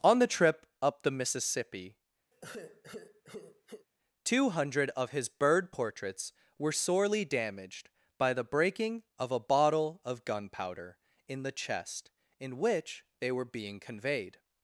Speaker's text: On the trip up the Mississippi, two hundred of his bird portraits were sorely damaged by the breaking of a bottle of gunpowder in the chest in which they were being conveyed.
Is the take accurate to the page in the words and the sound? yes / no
no